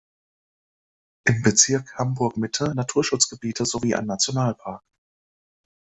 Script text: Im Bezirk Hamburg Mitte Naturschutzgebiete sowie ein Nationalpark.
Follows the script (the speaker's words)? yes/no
yes